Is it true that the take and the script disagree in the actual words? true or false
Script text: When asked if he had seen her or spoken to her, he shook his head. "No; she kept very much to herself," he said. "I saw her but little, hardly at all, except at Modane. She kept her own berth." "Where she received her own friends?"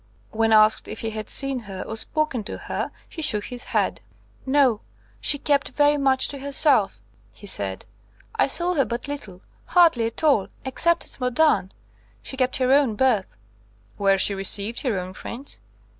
false